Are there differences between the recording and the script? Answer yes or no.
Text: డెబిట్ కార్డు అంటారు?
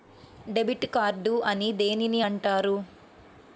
yes